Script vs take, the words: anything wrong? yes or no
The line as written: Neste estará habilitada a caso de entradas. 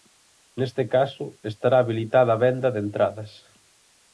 yes